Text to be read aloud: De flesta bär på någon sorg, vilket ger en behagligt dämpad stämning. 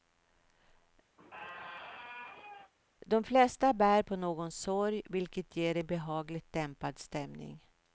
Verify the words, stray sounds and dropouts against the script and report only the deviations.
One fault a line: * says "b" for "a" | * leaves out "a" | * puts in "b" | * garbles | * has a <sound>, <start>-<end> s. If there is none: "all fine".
* has a squeak, 1.2-2.7 s